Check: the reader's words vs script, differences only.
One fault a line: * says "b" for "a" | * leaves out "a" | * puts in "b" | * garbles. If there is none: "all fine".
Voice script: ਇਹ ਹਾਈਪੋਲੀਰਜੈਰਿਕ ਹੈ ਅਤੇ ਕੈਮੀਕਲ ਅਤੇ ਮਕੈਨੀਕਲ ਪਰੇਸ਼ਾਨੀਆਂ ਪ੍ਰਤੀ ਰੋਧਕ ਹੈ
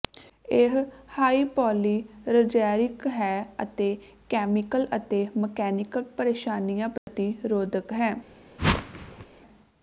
all fine